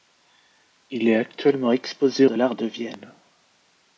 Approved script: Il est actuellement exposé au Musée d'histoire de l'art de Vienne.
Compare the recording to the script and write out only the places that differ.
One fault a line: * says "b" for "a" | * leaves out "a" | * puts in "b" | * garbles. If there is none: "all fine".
* leaves out "au Musée d'histoire"